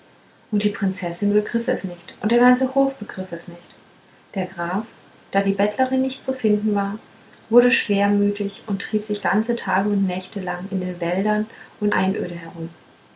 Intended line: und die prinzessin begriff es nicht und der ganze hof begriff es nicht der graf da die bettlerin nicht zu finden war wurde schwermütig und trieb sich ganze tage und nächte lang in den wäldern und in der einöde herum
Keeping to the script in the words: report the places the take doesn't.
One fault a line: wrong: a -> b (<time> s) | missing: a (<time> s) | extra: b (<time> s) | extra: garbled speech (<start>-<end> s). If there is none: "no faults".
missing: in der (11.9 s)